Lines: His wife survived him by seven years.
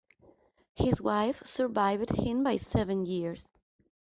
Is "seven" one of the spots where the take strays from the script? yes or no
no